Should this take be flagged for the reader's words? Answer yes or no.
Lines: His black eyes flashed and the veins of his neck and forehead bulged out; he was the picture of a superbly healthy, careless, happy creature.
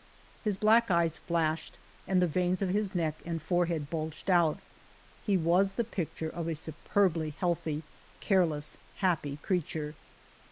no